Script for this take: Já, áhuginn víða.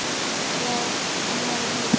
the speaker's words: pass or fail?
pass